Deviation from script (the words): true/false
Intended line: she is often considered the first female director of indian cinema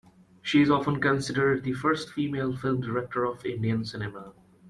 true